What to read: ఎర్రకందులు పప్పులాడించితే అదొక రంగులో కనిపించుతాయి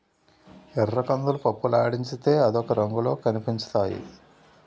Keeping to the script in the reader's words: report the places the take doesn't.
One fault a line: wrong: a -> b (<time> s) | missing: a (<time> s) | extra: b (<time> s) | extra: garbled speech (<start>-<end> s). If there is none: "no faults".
no faults